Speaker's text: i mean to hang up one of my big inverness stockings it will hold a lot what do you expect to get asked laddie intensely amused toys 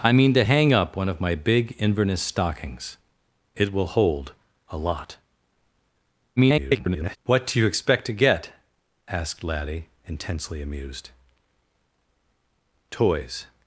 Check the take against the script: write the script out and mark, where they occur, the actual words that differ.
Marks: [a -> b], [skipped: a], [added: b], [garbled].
i mean to hang up one of my big inverness stockings it will hold a lot [garbled] what do you expect to get asked laddie intensely amused toys